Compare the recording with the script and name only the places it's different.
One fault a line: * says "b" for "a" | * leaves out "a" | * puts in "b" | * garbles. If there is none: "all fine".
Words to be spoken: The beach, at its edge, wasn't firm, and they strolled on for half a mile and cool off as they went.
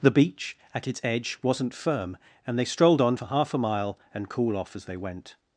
all fine